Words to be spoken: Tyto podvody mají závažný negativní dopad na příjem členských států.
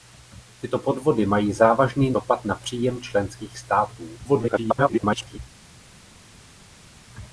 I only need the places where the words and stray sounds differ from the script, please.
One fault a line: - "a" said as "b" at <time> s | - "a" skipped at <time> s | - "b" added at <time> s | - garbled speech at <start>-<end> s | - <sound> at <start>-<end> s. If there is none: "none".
- "negativní" skipped at 2.1 s
- garbled speech at 4.2-5.4 s